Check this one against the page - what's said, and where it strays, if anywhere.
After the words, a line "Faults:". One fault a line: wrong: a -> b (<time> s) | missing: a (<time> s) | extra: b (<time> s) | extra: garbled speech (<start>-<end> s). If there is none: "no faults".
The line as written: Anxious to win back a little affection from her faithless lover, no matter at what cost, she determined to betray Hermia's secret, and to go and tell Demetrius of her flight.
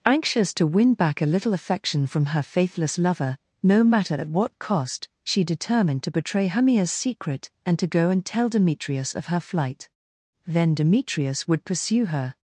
Anxious to win back a little affection from her faithless lover, no matter at what cost, she determined to betray Hermia's secret, and to go and tell Demetrius of her flight. Then Demetrius would pursue her
Faults:
extra: Then Demetrius would pursue her (10.5 s)